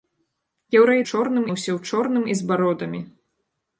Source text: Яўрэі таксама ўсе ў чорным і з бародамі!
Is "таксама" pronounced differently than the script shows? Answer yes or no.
yes